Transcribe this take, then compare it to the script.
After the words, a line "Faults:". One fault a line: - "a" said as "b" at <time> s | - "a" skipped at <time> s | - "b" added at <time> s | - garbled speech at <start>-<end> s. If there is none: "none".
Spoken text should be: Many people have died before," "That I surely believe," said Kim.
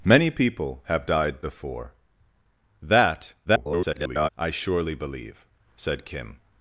Many people have died before," "That [garbled] I surely believe," said Kim.
Faults:
- garbled speech at 3.4-4.3 s